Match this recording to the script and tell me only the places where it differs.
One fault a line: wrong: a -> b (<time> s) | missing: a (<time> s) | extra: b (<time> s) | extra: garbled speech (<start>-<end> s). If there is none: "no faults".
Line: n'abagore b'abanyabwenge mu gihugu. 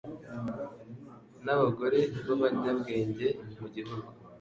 no faults